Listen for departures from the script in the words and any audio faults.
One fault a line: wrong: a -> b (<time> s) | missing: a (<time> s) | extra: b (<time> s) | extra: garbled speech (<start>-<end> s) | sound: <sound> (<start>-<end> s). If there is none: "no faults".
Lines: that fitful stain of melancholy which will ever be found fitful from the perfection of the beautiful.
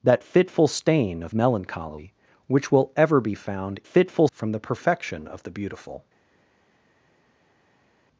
no faults